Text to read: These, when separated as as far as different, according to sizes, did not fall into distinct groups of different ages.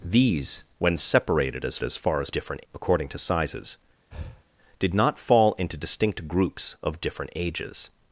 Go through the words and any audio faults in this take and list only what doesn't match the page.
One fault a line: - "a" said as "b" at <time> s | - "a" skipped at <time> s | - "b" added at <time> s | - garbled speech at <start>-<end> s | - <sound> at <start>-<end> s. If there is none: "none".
- breath at 4.1-4.4 s